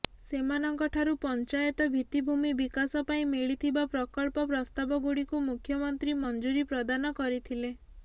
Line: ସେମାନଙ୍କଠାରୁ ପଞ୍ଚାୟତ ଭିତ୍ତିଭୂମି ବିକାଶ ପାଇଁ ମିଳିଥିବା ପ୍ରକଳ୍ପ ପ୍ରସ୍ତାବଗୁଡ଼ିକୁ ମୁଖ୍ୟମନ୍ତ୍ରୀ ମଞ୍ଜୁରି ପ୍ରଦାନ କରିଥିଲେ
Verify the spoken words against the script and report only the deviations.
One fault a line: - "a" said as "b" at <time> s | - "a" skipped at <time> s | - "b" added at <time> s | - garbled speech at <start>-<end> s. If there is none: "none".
none